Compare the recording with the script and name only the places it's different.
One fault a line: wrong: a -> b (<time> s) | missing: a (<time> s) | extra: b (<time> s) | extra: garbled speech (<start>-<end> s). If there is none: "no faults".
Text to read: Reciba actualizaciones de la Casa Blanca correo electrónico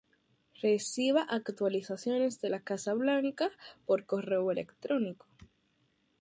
extra: por (3.8 s)